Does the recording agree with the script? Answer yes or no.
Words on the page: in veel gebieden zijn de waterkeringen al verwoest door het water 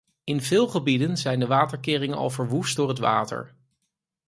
yes